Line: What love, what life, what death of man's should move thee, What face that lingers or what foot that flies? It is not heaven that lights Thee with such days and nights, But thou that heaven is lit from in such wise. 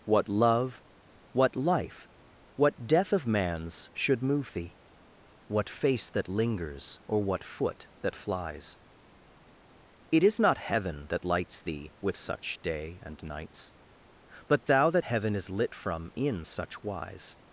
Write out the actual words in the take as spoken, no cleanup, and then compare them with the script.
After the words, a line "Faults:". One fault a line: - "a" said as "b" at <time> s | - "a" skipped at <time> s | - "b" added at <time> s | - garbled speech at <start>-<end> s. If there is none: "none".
What love, what life, what death of man's should move thee, What face that lingers or what foot that flies? It is not heaven that lights Thee with such day and nights, But thou that heaven is lit from in such wise.
Faults:
- "days" said as "day" at 12.6 s